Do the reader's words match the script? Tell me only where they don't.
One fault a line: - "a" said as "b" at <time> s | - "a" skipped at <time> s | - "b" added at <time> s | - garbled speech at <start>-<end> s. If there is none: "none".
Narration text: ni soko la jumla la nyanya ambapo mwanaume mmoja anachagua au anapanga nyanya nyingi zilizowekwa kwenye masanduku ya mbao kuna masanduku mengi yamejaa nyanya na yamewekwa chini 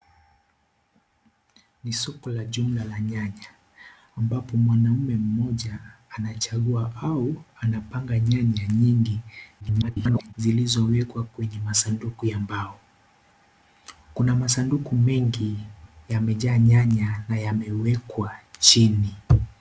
- garbled speech at 9.6-10.3 s